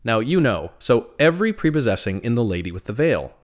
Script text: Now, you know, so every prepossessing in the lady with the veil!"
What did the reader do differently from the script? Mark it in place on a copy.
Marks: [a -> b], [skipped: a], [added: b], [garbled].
Now, you know, so every prepossessing in the lady with the veil!"